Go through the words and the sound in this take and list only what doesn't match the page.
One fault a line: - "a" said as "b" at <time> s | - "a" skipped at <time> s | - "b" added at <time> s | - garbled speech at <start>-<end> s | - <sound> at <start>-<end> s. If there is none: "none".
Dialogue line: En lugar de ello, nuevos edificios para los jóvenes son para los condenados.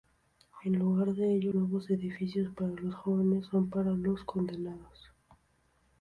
none